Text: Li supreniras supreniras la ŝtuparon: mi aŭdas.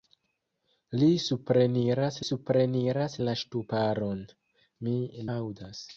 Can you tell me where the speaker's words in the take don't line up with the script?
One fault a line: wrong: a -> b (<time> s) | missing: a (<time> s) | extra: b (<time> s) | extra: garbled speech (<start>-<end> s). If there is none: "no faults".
no faults